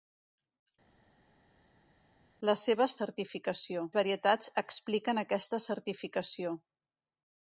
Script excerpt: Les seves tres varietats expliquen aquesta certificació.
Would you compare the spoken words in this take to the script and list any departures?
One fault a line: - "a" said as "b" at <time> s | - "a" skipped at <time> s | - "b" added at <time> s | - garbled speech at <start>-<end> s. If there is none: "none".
- "tres" said as "certificació" at 3.0 s